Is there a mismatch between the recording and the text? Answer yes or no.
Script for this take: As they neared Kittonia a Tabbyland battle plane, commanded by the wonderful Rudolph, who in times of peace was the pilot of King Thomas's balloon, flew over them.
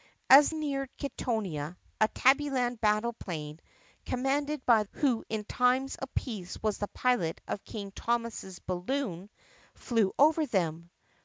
yes